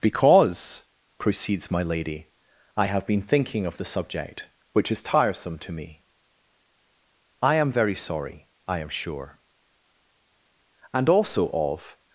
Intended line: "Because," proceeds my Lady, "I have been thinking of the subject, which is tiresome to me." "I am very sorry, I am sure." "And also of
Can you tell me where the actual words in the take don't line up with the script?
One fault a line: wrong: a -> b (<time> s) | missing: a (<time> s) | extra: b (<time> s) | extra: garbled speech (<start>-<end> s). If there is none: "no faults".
no faults